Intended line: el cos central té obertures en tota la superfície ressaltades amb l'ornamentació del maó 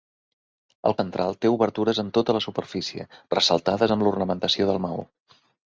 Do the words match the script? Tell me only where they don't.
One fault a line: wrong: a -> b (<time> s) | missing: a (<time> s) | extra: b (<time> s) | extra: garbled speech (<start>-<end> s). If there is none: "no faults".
missing: cos (0.9 s)